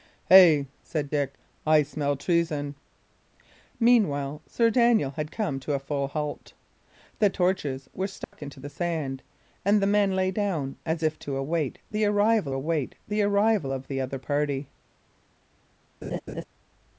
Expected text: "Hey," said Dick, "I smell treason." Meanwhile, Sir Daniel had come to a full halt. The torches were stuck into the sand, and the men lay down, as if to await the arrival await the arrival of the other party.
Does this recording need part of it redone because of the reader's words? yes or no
no